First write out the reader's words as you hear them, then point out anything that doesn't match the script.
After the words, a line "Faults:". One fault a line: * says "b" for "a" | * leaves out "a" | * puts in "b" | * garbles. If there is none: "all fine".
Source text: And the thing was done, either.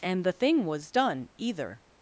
And the thing was done, either.
Faults:
all fine